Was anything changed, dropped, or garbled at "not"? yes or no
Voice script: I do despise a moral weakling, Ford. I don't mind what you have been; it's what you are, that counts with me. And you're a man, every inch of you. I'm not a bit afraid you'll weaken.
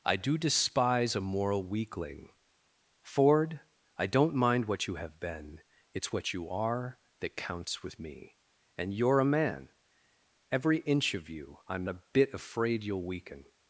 yes